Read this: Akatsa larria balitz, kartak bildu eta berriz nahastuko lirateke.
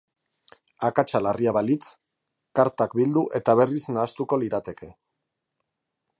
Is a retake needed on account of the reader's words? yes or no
no